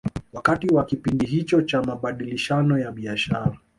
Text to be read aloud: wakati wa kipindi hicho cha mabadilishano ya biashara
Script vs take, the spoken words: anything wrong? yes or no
no